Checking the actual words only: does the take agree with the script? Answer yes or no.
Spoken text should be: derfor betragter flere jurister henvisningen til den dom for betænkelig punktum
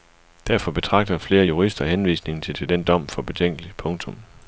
no